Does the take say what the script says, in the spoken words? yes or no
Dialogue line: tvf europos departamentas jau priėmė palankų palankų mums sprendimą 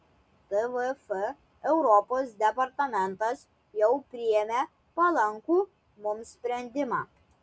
no